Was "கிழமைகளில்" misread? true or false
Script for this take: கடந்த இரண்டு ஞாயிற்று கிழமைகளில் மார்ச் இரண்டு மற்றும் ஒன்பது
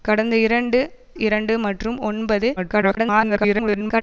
true